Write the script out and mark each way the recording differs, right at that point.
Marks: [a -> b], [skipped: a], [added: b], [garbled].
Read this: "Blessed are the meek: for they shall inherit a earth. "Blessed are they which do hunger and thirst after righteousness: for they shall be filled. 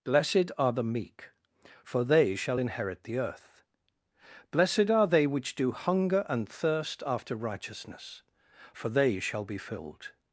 "Blessed are the meek: for they shall inherit [a -> the] earth. "Blessed are they which do hunger and thirst after righteousness: for they shall be filled.